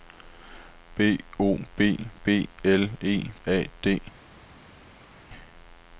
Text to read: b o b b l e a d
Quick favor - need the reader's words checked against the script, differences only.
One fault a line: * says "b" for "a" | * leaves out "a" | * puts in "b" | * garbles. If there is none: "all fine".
all fine